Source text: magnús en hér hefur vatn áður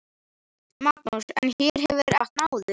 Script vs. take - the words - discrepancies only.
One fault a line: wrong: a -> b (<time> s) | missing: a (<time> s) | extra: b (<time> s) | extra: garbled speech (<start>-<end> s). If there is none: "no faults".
no faults